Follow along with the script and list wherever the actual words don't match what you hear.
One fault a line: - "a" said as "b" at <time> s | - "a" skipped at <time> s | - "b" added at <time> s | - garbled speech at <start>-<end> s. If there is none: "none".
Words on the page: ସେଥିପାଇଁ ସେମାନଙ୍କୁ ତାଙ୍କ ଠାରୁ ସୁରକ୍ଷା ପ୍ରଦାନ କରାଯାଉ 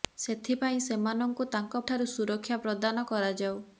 none